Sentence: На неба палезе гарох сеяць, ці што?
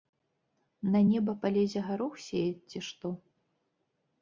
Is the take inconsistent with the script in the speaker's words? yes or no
no